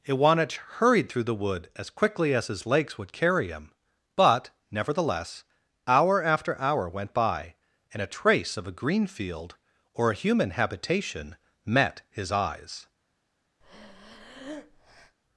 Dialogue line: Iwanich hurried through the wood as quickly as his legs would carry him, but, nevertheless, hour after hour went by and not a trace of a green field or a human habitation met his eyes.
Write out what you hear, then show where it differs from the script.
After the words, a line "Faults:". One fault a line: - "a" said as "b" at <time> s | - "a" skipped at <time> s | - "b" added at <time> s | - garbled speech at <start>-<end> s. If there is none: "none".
Iwanich hurried through the wood as quickly as his legs would carry him, but, nevertheless, hour after hour went by and a trace of a green field or a human habitation met his eyes.
Faults:
- "not" skipped at 8.0 s